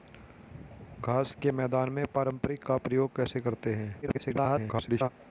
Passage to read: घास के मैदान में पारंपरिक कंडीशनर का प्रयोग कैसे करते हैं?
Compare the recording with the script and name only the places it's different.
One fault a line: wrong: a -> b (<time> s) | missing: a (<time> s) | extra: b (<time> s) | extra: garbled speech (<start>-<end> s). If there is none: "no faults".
missing: कंडीशनर (2.6 s)
extra: garbled speech (4.0-5.1 s)